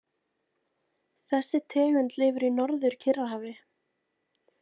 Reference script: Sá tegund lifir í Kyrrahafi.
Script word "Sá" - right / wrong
wrong